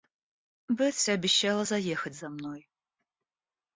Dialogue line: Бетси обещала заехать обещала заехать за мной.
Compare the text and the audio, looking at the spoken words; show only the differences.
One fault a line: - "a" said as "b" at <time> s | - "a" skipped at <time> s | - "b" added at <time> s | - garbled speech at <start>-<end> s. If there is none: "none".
- "обещала заехать" skipped at 2.1 s